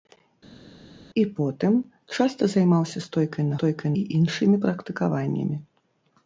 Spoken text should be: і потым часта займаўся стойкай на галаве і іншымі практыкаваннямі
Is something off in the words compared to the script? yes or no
yes